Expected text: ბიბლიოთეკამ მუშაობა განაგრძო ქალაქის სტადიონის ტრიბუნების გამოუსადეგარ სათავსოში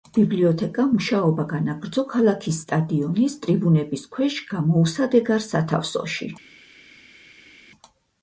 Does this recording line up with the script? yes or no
no